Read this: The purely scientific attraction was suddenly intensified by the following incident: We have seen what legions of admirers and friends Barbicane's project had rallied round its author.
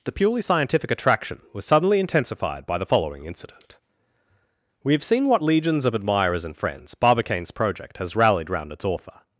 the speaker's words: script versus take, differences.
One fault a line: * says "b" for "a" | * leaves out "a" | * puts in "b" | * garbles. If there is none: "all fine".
* says "has" for "had"